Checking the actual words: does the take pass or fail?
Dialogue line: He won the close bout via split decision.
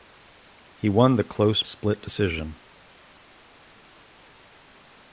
fail